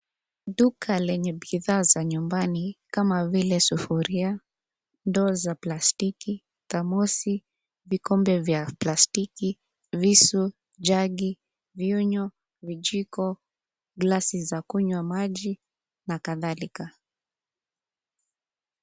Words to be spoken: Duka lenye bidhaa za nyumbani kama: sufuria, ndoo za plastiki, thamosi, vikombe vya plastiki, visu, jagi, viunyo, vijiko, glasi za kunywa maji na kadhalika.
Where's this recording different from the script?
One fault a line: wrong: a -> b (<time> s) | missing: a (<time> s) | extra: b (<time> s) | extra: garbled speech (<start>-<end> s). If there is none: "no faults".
extra: vile (3.3 s)